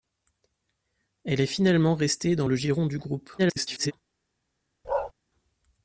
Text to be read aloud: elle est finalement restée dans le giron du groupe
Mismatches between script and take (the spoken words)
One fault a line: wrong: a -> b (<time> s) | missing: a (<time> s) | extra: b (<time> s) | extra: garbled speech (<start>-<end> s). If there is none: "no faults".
extra: garbled speech (3.4-3.9 s)